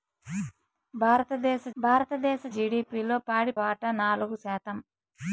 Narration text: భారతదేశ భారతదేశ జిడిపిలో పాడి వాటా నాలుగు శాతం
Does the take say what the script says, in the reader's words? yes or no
yes